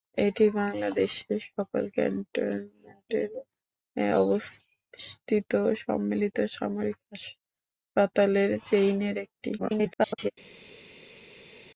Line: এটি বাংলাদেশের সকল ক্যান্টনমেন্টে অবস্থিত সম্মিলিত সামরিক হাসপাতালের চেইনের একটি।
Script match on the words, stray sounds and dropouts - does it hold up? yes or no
no